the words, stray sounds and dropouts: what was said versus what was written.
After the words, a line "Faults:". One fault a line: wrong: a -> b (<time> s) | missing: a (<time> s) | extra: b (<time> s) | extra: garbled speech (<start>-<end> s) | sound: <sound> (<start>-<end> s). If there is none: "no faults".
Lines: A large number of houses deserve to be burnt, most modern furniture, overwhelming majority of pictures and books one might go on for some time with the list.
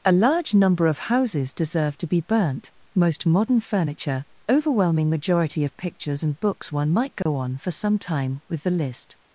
A large number of houses deserve to be burnt, most modern furniture, overwhelming majority of pictures and books one might go on for some time with the list.
Faults:
sound: dropout (7.2-7.3 s)